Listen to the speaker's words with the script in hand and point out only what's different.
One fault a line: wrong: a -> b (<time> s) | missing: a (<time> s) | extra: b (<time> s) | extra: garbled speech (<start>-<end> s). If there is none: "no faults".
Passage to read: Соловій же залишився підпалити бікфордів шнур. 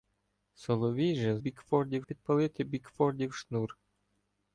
wrong: залишився -> бікфордів (1.4 s)